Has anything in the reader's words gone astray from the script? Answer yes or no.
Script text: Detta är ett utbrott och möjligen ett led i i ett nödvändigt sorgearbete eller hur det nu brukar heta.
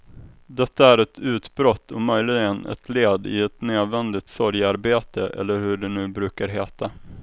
yes